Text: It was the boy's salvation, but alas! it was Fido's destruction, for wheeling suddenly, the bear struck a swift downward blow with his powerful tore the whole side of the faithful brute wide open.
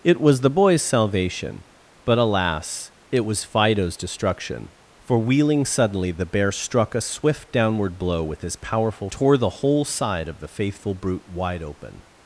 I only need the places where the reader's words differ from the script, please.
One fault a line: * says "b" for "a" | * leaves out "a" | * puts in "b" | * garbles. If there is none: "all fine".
all fine